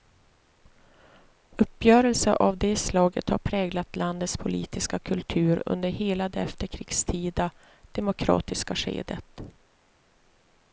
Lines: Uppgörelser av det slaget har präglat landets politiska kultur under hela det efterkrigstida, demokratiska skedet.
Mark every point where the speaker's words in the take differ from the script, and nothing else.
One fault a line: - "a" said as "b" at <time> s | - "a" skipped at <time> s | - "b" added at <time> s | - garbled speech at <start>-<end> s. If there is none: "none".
none